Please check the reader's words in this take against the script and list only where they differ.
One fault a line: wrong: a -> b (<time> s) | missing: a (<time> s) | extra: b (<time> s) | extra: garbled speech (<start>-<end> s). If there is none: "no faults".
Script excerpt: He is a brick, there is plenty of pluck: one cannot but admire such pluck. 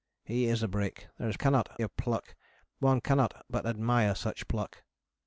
wrong: plenty -> cannot (1.4 s)